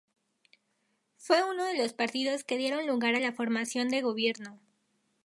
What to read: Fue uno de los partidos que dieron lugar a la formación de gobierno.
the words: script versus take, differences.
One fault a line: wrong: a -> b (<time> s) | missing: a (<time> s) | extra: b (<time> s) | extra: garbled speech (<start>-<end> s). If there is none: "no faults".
no faults